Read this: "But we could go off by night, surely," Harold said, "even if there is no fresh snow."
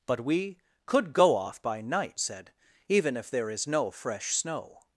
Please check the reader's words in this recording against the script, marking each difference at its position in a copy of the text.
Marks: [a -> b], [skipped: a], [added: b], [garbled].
"But we could go off by night, [skipped: surely," Harold] said, "even if there is no fresh snow."